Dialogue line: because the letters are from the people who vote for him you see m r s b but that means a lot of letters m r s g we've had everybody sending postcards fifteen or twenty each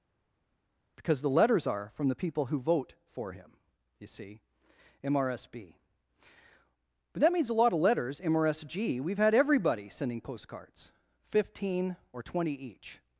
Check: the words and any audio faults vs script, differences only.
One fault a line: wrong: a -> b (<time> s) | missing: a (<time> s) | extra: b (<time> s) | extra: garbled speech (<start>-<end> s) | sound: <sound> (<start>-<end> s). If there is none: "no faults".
no faults